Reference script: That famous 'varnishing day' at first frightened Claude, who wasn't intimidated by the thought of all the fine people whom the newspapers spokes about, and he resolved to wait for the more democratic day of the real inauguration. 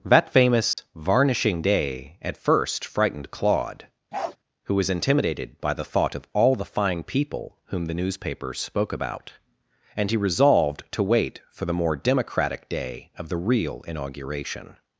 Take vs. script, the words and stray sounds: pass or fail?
fail